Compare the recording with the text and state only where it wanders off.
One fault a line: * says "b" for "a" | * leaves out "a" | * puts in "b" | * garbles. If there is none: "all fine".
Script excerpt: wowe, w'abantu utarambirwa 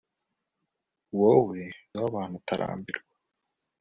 all fine